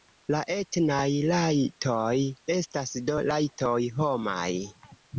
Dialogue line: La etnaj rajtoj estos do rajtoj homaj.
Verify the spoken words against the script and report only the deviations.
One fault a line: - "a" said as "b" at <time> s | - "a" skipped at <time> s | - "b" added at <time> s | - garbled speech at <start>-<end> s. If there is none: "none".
- "estos" said as "estas" at 2.5 s